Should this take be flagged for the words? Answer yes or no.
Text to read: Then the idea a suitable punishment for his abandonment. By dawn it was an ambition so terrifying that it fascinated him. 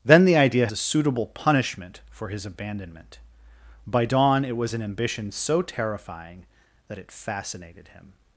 no